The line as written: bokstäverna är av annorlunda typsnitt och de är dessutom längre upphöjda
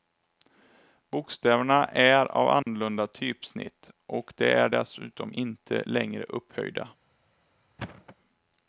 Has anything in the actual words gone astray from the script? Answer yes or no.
yes